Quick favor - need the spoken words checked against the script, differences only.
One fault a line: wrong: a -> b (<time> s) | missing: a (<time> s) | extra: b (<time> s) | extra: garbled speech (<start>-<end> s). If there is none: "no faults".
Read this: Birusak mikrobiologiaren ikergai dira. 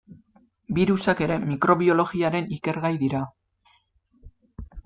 extra: ere (1.2 s)